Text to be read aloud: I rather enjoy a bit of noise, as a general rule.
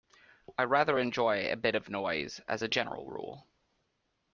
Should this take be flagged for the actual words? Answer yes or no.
no